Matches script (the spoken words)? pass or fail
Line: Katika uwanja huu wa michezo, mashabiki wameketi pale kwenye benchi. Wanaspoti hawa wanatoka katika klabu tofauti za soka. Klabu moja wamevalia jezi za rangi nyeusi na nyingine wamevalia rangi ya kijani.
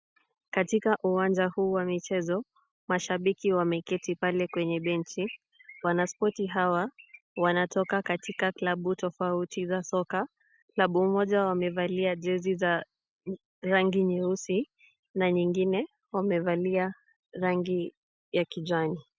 pass